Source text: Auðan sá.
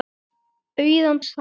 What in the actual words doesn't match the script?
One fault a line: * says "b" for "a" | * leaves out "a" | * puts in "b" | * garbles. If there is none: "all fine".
all fine